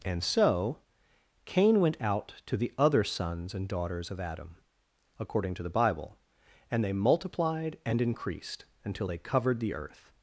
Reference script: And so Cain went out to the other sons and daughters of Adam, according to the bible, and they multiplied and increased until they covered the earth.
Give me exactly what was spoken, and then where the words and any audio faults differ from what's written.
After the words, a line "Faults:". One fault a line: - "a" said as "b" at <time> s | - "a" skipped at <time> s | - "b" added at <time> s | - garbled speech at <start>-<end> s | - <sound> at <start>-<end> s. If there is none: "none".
And so Cain went out to the other sons and daughters of Adam, according to the bible, and they multiplied and increased until they covered the earth.
Faults:
none